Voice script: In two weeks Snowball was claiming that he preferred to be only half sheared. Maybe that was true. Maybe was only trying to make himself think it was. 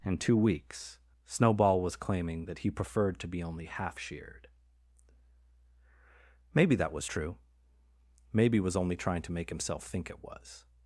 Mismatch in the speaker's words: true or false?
false